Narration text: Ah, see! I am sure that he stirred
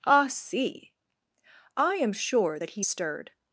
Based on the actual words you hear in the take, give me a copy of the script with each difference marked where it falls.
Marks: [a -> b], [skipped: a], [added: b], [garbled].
Ah, see! I am sure that he stirred